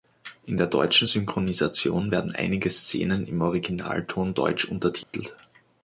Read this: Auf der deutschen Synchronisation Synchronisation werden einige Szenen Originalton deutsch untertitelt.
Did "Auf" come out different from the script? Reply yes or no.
yes